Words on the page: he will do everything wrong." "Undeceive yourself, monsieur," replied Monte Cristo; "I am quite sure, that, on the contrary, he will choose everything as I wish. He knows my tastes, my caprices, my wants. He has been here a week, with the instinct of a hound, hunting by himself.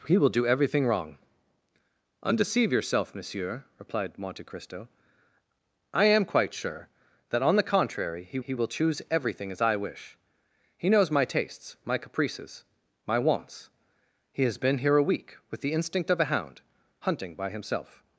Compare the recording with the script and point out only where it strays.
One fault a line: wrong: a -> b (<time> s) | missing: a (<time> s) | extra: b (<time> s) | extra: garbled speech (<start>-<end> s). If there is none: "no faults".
extra: he (8.4 s)